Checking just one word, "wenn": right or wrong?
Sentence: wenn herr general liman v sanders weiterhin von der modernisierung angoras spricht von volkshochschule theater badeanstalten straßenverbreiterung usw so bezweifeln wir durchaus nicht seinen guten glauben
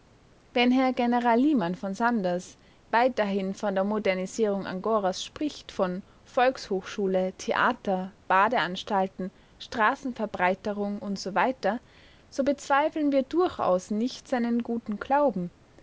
right